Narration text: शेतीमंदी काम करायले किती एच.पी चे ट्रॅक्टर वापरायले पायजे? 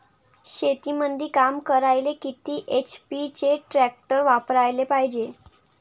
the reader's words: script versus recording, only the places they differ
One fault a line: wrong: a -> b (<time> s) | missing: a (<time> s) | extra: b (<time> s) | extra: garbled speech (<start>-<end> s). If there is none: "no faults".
no faults